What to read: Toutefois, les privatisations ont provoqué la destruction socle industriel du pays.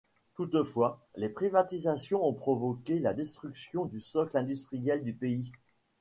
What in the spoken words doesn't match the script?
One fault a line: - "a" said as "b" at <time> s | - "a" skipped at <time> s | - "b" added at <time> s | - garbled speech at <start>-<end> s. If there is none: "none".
- "du" added at 3.8 s